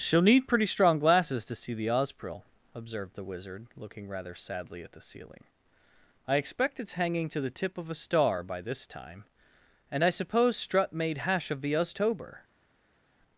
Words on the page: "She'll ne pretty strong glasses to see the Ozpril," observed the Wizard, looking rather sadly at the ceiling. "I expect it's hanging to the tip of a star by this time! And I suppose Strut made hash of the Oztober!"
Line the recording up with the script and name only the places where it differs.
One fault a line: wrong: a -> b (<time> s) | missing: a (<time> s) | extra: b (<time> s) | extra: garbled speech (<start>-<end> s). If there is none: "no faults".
wrong: ne -> need (0.2 s)